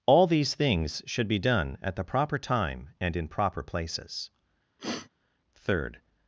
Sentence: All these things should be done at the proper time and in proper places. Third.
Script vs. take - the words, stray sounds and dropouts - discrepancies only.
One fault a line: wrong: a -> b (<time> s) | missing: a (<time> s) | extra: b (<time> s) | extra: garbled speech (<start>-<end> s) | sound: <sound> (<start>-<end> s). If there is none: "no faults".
sound: sniff (4.8-5.1 s)